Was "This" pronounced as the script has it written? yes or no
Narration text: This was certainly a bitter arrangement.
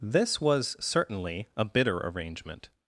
yes